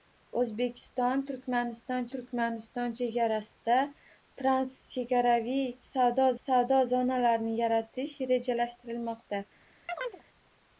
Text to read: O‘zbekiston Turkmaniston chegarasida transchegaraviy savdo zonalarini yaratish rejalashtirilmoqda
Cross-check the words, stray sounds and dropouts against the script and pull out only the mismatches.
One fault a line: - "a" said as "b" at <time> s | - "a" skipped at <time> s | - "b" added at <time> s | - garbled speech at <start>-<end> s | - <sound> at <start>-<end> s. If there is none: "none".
- "Turkmaniston" added at 2.1 s
- "savdo" added at 6.4 s
- chirp at 9.9-10.2 s